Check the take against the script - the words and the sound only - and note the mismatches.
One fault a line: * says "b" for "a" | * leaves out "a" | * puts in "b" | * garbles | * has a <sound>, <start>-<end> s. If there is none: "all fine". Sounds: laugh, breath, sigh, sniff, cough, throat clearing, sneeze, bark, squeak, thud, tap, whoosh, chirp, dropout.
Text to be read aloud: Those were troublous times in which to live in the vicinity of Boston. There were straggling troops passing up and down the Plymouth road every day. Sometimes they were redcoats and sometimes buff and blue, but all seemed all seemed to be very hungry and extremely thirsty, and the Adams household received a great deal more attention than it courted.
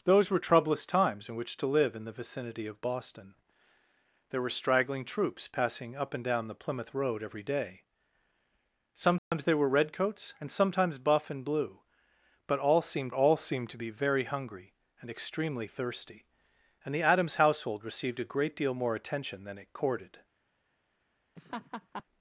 * has a dropout, 9.2-9.3 s
* has a laugh, 21.4-22.0 s